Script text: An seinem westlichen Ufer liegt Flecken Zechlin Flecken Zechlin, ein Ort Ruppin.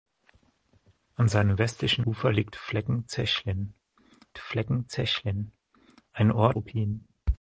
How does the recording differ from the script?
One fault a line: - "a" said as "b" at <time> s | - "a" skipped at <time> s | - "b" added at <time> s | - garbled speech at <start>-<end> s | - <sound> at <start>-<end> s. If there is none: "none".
none